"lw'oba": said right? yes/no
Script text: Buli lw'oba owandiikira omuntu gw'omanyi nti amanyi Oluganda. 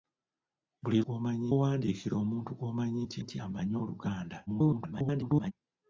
no